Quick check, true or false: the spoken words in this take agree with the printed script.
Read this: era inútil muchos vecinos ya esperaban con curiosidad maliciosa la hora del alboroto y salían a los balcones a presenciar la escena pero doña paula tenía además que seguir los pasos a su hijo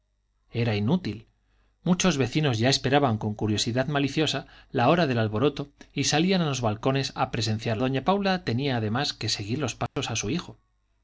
false